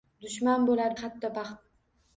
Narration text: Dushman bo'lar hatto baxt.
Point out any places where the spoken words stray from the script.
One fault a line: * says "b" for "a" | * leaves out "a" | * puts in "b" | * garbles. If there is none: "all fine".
all fine